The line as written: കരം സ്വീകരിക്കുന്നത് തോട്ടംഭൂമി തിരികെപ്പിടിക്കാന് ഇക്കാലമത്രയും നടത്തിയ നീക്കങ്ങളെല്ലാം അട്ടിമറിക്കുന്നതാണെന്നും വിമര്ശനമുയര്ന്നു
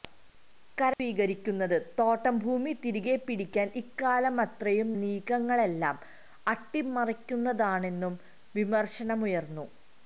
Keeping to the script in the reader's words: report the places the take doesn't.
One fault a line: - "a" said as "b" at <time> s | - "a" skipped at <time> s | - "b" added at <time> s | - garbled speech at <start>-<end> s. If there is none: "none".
- "നടത്തിയ" skipped at 4.9 s